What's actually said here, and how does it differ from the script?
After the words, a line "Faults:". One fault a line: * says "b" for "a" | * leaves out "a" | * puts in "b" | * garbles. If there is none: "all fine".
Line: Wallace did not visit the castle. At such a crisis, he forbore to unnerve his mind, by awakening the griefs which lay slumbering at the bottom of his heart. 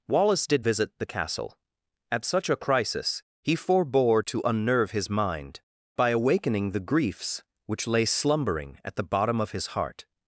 Wallace did visit the castle. At such a crisis, he forbore to unnerve his mind, by awakening the griefs which lay slumbering at the bottom of his heart.
Faults:
* leaves out "not"